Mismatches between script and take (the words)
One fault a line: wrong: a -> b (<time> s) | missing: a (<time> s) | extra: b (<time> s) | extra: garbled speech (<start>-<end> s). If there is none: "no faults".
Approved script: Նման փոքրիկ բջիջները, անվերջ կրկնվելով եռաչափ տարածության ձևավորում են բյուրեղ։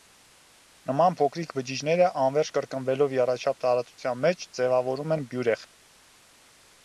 extra: մեջ (4.2 s)